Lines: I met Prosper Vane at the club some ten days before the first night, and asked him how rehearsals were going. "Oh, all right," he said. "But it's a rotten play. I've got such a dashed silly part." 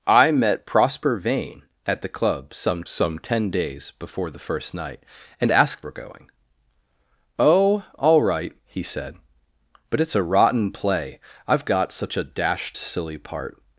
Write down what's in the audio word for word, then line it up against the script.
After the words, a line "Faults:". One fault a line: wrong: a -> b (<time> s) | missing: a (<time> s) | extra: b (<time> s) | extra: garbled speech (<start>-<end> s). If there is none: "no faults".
I met Prosper Vane at the club some some ten days before the first night, and asked were going. "Oh, all right," he said. "But it's a rotten play. I've got such a dashed silly part."
Faults:
extra: some (2.9 s)
missing: him how rehearsals (5.9 s)